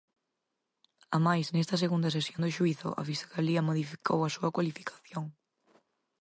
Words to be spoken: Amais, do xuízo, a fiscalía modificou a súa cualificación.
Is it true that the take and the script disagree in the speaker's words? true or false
true